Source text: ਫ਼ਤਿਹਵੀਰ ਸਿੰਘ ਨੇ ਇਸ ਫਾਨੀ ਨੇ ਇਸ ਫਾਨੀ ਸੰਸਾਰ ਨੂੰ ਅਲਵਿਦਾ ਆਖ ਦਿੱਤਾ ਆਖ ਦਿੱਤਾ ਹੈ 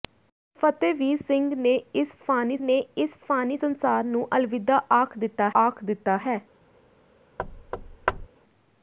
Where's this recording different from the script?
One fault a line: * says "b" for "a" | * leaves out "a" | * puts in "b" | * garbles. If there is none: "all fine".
all fine